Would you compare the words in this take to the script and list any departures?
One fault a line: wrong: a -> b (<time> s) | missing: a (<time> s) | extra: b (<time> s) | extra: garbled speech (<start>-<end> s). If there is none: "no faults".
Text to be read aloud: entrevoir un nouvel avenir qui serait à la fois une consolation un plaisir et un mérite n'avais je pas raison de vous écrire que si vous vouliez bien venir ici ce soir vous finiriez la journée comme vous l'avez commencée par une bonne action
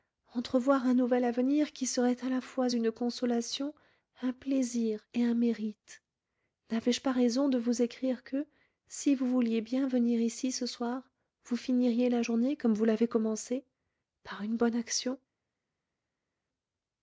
no faults